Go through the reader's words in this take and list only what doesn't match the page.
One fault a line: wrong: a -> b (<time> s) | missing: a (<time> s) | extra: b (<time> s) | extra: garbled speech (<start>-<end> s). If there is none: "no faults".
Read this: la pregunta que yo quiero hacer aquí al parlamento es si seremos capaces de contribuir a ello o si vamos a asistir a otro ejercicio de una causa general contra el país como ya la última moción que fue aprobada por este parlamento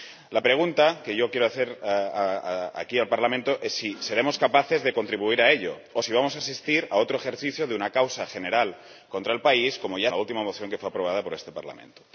no faults